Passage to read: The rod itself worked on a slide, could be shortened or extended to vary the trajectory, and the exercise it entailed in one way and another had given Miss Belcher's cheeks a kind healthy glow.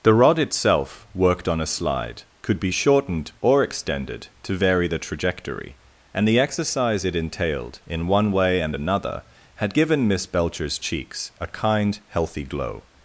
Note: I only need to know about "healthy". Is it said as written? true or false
true